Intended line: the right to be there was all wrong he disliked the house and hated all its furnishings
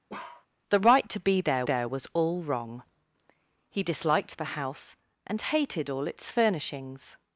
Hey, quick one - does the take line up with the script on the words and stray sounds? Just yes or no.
no